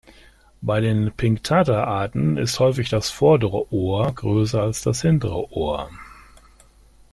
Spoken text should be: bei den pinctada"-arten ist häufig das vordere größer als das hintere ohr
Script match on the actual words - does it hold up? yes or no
no